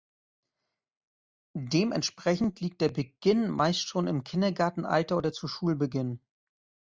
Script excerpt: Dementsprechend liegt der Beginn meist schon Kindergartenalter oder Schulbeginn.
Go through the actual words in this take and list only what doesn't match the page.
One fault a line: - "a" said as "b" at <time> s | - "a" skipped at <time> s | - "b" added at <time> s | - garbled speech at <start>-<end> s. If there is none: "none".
- "im" added at 4.1 s
- "zu" added at 5.3 s